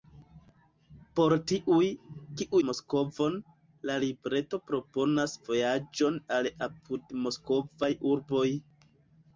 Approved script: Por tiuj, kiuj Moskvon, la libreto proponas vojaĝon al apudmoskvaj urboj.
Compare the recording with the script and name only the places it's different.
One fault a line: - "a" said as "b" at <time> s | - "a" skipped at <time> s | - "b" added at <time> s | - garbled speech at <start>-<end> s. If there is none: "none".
none